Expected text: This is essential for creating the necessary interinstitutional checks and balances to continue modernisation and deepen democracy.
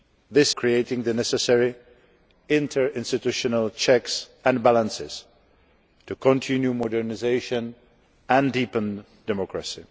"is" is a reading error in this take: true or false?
true